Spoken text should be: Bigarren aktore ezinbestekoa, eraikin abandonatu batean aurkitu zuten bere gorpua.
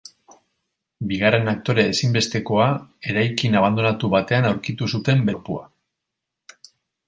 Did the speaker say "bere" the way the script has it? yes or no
no